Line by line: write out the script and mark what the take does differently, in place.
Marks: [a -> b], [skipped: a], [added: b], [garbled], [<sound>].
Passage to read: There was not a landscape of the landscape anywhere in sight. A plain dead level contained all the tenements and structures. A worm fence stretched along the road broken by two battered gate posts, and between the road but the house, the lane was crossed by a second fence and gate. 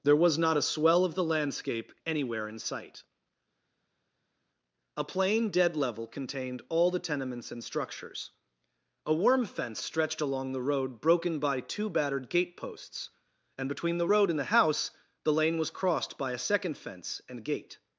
There was not a [landscape -> swell] of the landscape anywhere in sight. A plain dead level contained all the tenements and structures. A worm fence stretched along the road broken by two battered gate posts, and between the road [but -> and] the house, the lane was crossed by a second fence and gate.